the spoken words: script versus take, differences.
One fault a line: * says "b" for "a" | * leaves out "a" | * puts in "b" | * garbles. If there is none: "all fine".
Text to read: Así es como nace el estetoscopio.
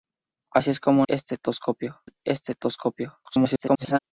* says "estetoscopio" for "nace"
* garbles